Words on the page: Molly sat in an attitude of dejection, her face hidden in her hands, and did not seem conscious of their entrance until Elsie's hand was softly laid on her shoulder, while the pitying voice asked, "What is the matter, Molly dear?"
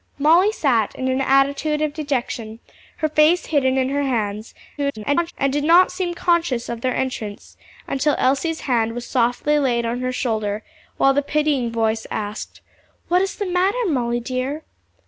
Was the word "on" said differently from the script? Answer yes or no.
no